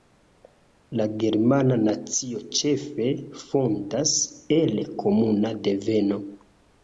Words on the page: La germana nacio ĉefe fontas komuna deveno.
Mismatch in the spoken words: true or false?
true